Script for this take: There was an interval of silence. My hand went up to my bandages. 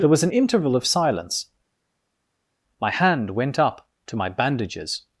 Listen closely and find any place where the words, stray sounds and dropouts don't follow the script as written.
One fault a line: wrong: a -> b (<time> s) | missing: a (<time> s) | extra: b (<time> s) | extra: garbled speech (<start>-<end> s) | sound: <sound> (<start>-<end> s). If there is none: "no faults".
no faults